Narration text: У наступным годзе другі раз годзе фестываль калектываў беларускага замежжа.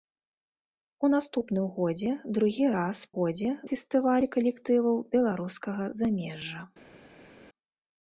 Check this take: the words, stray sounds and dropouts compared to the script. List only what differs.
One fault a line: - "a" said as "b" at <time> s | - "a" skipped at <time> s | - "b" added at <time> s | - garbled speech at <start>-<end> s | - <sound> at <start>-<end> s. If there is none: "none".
none